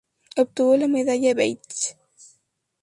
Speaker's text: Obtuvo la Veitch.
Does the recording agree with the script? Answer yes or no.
no